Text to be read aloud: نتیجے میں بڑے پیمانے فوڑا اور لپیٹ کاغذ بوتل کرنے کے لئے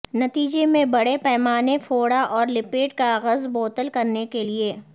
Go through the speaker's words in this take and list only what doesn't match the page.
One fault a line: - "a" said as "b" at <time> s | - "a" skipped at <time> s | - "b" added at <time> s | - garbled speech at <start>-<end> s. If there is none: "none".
none